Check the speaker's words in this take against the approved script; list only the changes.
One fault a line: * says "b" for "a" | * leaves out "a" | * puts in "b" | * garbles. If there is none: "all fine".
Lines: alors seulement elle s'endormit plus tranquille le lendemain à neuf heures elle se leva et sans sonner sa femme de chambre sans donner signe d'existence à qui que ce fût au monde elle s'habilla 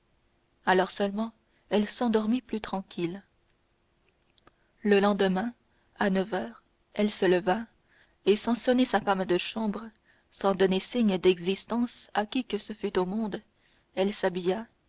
all fine